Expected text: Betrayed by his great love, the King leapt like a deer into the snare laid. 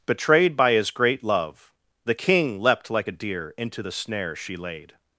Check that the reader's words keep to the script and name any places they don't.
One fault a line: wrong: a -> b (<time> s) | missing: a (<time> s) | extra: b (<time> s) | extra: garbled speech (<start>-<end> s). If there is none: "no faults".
extra: she (4.3 s)